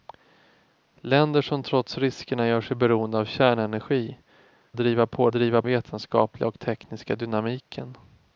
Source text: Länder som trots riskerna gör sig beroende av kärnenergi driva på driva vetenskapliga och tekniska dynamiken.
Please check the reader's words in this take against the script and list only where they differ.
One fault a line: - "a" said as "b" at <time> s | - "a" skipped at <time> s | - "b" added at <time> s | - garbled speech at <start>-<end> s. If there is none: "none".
none